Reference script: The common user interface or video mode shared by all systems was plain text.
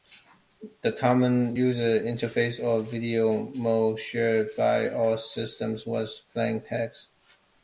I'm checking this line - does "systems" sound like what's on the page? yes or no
yes